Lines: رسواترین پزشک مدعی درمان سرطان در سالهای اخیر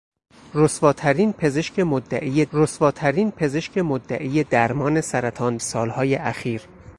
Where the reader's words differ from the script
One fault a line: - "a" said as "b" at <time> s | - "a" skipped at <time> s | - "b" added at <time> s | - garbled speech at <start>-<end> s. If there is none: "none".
- "رسواترین پزشک مدعی" added at 2.5 s
- "در" skipped at 5.6 s